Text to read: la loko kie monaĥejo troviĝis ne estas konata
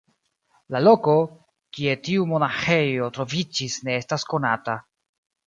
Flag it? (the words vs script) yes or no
yes